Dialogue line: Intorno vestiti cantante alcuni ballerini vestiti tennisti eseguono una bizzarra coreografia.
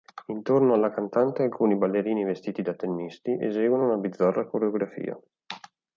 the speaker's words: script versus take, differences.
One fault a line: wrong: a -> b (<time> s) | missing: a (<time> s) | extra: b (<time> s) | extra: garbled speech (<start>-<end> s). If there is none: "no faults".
wrong: vestiti -> alla (0.7 s)
extra: da (2.6 s)